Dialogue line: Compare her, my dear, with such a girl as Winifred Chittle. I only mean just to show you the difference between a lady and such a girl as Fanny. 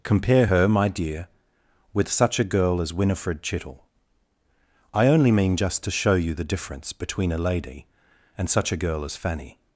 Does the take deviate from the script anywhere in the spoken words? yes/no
no